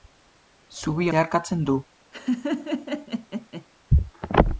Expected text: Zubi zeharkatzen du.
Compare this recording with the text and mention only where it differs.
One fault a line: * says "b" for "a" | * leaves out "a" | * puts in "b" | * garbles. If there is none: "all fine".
all fine